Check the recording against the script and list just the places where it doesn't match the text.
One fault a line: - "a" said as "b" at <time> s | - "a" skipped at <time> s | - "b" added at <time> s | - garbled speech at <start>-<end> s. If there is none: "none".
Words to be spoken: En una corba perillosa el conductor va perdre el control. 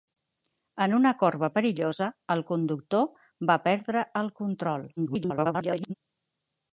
- garbled speech at 5.0-5.9 s